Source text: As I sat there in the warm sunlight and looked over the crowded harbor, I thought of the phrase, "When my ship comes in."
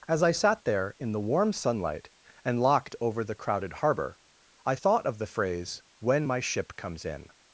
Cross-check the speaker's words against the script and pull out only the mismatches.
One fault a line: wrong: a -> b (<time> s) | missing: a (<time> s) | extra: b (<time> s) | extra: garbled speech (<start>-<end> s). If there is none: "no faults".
wrong: looked -> locked (2.6 s)